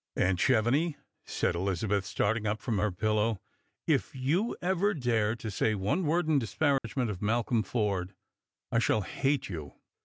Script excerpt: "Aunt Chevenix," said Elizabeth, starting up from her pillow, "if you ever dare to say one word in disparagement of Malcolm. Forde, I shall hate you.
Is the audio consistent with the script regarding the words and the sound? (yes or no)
no